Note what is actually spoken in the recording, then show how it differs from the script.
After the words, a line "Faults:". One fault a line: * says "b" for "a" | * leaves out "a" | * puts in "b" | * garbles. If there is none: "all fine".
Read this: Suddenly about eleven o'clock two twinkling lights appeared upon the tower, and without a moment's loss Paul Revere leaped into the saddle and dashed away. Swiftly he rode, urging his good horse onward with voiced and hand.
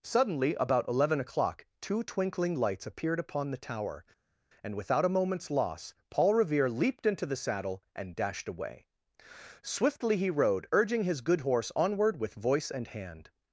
Suddenly about eleven o'clock two twinkling lights appeared upon the tower, and without a moment's loss Paul Revere leaped into the saddle and dashed away. Swiftly he rode, urging his good horse onward with voice and hand.
Faults:
* says "voice" for "voiced"